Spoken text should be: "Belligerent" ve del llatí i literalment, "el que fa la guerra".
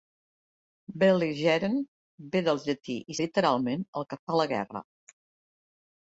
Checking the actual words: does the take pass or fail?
pass